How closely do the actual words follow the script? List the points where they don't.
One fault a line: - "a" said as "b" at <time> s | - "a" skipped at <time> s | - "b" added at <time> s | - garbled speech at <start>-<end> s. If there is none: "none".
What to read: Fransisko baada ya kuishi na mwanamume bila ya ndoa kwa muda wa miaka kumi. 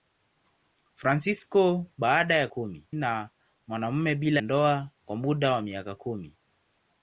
- "kuishi" said as "kumi" at 2.5 s
- "ya" skipped at 4.4 s